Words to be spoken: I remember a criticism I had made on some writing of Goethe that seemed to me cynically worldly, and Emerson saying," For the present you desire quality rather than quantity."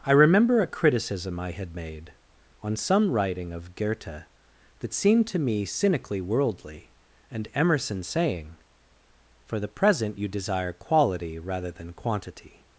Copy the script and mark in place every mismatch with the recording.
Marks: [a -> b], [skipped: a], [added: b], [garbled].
I remember a criticism I had made on some writing of Goethe that seemed to me cynically worldly, and Emerson saying," For the present you desire quality rather than quantity."